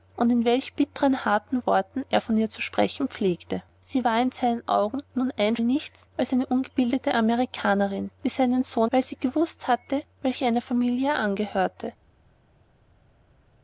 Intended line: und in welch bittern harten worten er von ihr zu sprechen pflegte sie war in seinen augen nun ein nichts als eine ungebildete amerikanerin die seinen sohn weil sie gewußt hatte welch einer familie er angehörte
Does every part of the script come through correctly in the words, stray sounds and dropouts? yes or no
yes